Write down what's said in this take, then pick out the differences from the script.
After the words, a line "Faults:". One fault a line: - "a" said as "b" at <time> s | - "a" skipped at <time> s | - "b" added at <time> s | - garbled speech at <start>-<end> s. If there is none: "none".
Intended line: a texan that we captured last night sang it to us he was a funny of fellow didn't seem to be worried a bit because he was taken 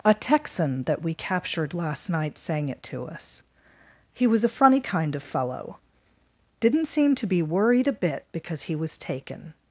a texan that we captured last night sang it to us he was a funny kind of fellow didn't seem to be worried a bit because he was taken
Faults:
- "kind" added at 4.8 s